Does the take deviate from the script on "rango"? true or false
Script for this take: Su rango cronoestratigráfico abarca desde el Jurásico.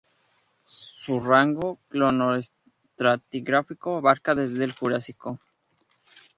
false